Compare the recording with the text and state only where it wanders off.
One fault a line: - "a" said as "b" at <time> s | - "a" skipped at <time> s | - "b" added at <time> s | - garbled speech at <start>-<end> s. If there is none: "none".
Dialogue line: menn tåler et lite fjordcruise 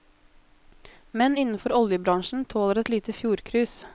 - "innenfor oljebransjen" added at 1.4 s